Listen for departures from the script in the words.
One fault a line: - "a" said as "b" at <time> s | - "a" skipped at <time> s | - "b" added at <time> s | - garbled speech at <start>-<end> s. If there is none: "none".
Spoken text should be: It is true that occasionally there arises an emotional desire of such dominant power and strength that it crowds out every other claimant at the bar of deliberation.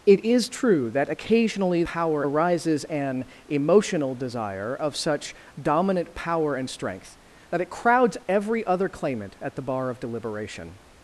- "there" said as "power" at 1.8 s
- "out" skipped at 8.2 s